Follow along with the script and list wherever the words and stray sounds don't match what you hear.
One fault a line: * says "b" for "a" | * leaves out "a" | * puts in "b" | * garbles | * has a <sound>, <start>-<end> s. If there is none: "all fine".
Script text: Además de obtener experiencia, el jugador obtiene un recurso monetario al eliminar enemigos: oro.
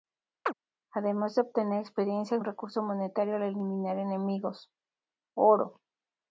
* has a chirp, 0.5-0.5 s
* leaves out "jugador obtiene"